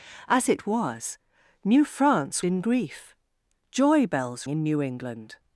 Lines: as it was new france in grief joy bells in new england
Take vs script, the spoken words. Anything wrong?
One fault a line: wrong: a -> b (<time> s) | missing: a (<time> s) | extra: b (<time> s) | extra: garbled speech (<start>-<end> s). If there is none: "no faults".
no faults